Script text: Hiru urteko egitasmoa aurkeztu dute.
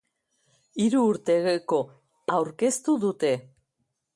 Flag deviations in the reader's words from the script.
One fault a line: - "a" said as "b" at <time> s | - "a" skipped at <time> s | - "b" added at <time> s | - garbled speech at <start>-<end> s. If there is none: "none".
- "egitasmoa" skipped at 1.8 s